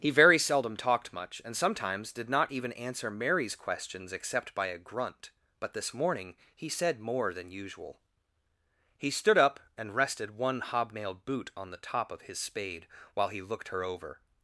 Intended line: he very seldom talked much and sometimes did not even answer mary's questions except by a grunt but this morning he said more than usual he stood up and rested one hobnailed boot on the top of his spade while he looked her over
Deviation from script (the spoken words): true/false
false